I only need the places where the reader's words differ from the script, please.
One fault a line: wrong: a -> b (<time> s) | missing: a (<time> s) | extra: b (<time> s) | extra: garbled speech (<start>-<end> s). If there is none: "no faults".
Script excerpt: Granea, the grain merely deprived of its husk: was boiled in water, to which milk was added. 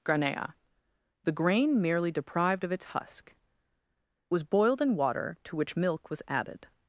no faults